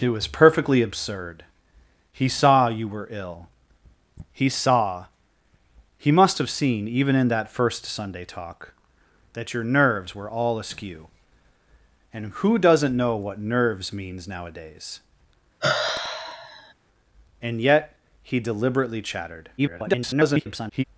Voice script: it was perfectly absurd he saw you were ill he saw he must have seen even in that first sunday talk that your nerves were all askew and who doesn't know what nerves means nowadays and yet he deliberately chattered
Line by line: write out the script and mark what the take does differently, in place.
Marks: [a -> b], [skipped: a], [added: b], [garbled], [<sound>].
it was perfectly absurd he saw you were ill he saw he must have seen even in that first sunday talk that your nerves were all askew and who doesn't know what nerves means nowadays [sigh] and yet he deliberately chattered [garbled]